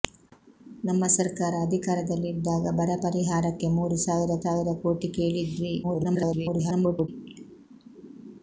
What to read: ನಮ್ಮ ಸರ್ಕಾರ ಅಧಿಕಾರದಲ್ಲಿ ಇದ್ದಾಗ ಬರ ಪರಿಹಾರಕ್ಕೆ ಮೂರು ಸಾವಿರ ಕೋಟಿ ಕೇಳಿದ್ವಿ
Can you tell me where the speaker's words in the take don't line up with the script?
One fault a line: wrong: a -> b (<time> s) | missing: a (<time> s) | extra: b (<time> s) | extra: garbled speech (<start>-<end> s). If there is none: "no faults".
extra: ಸಾವಿರ (4.4 s)
extra: garbled speech (5.8-7.1 s)